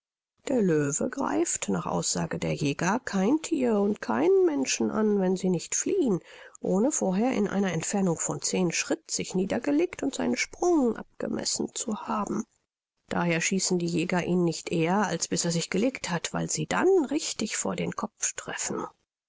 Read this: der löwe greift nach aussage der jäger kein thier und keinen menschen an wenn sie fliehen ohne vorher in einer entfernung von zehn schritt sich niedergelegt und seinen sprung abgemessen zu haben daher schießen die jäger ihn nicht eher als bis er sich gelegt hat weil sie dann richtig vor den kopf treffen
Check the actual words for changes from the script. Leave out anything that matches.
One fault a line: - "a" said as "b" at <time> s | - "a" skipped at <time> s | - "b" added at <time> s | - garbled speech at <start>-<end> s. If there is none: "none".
- "nicht" added at 5.5 s